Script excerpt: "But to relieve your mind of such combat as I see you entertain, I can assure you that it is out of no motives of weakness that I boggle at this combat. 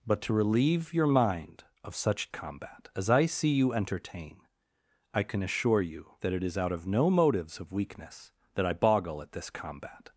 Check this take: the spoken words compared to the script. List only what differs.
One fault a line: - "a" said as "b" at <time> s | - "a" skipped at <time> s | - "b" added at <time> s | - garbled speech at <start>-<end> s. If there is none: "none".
none